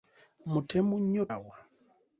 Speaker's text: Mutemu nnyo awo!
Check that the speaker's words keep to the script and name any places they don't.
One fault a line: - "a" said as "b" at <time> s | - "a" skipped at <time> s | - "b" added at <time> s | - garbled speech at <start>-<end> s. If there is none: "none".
none